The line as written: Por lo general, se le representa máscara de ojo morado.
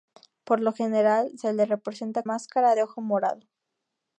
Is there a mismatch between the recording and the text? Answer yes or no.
no